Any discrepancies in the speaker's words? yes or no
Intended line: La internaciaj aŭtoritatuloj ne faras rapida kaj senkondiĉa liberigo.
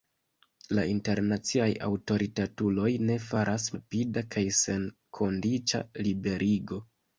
no